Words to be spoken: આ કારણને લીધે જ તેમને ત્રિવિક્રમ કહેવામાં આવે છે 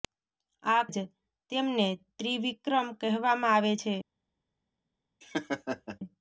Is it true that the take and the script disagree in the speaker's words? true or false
true